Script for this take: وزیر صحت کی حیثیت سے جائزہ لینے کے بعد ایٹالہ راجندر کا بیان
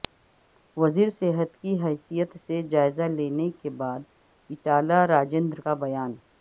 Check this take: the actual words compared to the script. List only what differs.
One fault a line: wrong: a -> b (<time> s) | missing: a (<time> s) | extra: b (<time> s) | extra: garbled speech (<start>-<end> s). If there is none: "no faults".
no faults